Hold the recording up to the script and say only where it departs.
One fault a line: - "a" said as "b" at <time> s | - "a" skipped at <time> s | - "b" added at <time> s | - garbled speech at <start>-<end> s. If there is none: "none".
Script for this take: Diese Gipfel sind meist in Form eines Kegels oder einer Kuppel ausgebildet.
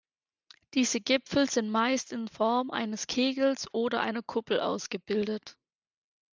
none